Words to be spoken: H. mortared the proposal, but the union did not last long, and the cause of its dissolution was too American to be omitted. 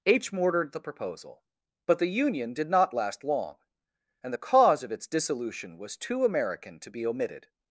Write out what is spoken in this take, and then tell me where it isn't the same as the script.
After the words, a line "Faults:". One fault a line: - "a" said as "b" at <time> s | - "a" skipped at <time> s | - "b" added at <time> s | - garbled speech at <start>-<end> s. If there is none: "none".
H. mortared the proposal, but the union did not last long, and the cause of its dissolution was too American to be omitted.
Faults:
none